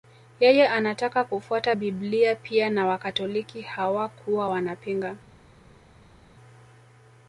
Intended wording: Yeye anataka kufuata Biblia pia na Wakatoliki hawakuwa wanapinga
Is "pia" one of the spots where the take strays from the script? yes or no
no